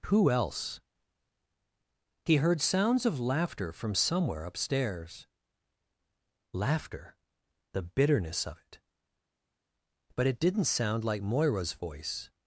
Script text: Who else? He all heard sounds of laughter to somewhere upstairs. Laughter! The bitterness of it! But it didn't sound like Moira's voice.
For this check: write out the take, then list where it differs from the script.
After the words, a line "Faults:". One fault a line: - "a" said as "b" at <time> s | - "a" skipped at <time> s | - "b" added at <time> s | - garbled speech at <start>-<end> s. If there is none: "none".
Who else? He heard sounds of laughter from somewhere upstairs. Laughter! The bitterness of it! But it didn't sound like Moira's voice.
Faults:
- "all" skipped at 2.4 s
- "to" said as "from" at 3.7 s